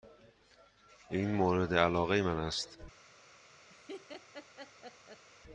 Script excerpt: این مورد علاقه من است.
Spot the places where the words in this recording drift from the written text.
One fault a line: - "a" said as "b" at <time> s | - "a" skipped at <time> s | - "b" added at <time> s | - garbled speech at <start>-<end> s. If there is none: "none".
none